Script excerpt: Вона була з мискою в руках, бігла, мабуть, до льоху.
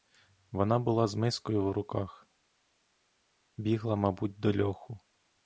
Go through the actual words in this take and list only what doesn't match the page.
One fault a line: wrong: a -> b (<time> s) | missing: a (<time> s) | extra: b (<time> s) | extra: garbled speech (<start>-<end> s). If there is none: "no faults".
no faults